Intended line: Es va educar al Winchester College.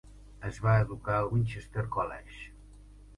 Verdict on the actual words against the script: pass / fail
pass